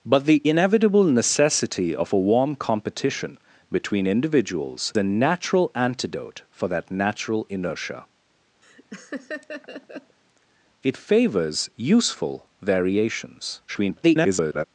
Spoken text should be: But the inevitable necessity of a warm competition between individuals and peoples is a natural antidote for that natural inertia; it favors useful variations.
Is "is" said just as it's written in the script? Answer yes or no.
no